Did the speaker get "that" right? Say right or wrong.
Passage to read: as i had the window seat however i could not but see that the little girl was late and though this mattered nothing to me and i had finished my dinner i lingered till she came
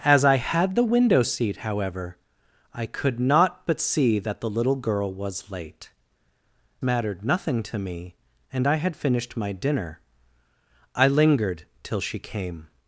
right